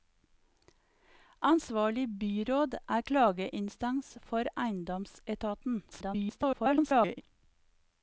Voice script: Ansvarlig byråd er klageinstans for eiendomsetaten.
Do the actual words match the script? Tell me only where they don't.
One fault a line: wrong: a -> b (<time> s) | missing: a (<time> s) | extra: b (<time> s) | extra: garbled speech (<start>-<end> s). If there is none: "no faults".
extra: garbled speech (5.9-7.2 s)